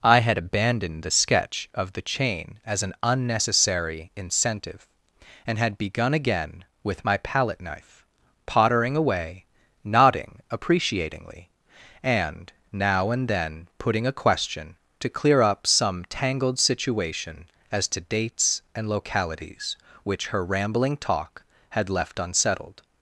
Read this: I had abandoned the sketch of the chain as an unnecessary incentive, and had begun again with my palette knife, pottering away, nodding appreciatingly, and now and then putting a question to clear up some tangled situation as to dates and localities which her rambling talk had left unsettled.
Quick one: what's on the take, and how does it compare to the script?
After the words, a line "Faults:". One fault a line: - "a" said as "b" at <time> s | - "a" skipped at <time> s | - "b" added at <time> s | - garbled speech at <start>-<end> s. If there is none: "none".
I had abandoned the sketch of the chain as an unnecessary incentive, and had begun again with my palette knife, pottering away, nodding appreciatingly, and now and then putting a question to clear up some tangled situation as to dates and localities which her rambling talk had left unsettled.
Faults:
none